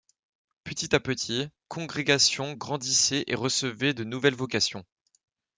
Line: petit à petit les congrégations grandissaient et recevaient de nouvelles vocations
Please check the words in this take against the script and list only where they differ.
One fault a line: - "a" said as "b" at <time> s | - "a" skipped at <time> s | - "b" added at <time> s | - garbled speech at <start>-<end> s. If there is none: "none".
- "les" skipped at 1.5 s